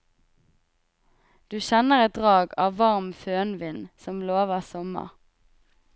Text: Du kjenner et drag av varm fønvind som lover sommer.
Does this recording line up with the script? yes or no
yes